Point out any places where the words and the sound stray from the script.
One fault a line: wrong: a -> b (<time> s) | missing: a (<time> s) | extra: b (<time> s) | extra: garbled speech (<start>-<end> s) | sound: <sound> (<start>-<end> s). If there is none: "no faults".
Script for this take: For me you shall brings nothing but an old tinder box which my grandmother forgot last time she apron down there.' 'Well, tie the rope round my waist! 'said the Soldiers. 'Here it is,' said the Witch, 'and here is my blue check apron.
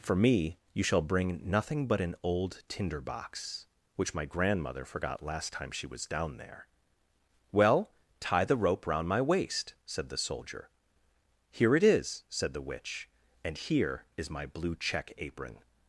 wrong: brings -> bring (1.0 s)
wrong: apron -> was (5.9 s)
wrong: Soldiers -> Soldier (10.2 s)